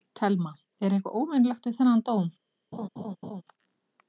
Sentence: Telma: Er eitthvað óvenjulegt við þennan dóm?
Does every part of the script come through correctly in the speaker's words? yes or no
yes